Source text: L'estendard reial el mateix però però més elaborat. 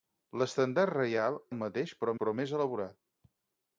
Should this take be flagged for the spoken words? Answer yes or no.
no